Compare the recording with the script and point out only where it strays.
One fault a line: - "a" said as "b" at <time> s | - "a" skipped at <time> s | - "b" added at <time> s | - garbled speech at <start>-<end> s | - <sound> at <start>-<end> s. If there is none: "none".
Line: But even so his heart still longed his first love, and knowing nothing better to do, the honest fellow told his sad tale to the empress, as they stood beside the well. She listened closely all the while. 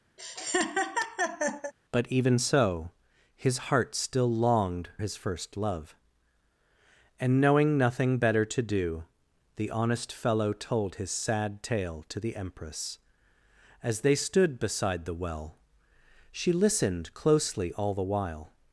- laugh at 0.2-1.7 s